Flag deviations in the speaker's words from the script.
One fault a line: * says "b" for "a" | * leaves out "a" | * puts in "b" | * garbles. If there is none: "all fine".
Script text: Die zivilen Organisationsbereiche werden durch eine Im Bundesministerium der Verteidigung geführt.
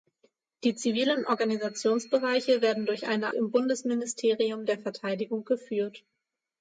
all fine